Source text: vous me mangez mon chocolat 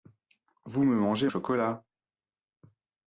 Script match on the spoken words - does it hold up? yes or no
no